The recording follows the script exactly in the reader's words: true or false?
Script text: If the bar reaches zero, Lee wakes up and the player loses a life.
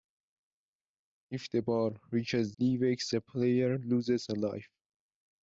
false